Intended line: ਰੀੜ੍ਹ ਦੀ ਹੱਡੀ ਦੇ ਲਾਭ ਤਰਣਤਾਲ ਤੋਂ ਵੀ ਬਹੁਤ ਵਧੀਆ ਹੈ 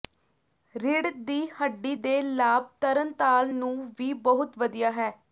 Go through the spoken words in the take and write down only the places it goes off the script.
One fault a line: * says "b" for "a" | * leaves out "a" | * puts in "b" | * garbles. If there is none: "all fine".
* says "ਨੂੰ" for "ਤੋਂ"